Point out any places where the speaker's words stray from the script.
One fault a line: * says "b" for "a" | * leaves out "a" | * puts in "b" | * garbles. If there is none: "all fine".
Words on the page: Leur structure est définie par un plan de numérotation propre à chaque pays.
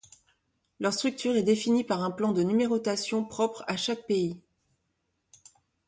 all fine